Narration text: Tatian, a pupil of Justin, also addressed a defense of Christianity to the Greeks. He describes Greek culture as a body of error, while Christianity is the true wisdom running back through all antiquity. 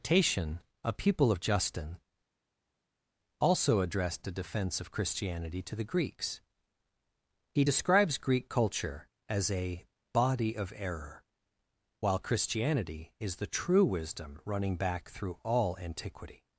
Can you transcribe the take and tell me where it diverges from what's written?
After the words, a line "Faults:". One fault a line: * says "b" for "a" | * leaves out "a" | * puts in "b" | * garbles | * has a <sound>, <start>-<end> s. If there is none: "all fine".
Tatian, a pupil of Justin, also addressed a defense of Christianity to the Greeks. He describes Greek culture as a body of error, while Christianity is the true wisdom running back through all antiquity.
Faults:
all fine